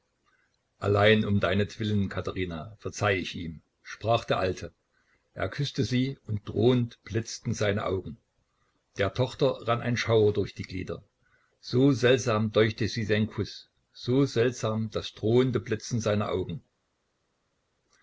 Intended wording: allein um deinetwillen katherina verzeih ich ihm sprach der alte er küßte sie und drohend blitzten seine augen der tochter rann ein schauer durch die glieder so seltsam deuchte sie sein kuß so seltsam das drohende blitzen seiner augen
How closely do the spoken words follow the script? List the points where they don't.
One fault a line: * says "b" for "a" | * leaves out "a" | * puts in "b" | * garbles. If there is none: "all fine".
all fine